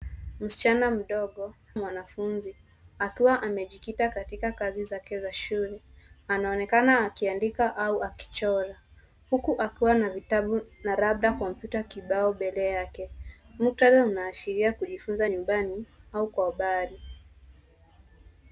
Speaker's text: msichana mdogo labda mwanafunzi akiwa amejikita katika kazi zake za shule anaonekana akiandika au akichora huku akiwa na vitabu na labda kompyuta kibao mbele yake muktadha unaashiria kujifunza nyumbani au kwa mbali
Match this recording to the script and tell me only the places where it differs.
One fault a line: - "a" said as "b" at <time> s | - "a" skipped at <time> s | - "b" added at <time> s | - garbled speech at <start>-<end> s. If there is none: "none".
- "labda" skipped at 1.6 s